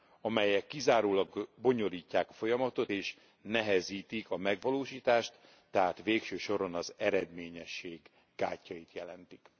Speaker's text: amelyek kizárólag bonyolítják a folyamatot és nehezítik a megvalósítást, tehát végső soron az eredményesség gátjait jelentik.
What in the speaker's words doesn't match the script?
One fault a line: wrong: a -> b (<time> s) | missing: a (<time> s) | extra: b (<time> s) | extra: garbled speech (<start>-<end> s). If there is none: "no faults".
no faults